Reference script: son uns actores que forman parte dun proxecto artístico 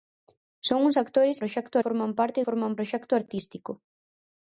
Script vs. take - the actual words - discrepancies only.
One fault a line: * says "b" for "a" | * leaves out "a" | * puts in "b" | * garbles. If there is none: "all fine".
* says "proxecto" for "que"
* says "forman" for "dun"